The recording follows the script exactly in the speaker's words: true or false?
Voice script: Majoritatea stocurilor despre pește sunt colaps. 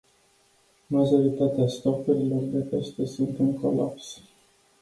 false